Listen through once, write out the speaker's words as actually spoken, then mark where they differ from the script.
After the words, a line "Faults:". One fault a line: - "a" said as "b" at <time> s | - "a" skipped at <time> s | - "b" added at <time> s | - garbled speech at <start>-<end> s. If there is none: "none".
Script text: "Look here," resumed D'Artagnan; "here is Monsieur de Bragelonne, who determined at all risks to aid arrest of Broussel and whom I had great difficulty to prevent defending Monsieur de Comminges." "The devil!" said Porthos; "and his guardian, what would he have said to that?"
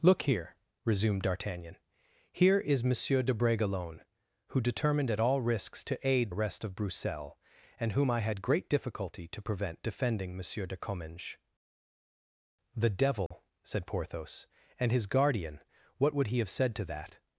"Look here," resumed D'Artagnan; "here is Monsieur de Bragelonne, who determined at all risks to aid arrest of Broussel and whom I had great difficulty to prevent defending Monsieur de Comminges." "The devil!" said Porthos; "and his guardian, what would he have said to that?"
Faults:
none